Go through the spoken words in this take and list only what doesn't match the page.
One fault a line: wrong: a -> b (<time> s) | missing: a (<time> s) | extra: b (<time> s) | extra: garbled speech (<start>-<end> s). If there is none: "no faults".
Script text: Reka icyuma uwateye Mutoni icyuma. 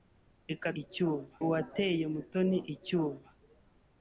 no faults